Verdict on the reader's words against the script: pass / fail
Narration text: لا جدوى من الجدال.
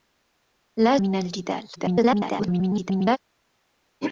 fail